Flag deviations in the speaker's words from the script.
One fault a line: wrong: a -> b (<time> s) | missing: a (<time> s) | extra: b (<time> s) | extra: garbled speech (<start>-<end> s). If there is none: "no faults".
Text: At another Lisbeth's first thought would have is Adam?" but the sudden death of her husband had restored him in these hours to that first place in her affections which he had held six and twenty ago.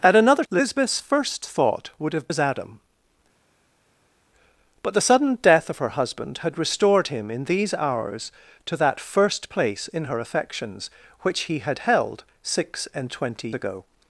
no faults